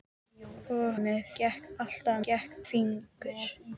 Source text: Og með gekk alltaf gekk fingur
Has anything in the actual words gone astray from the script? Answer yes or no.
no